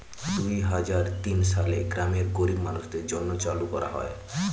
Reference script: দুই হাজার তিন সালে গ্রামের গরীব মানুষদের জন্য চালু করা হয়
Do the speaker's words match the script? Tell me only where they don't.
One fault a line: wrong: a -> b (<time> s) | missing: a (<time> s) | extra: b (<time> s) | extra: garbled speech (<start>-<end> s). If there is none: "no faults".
no faults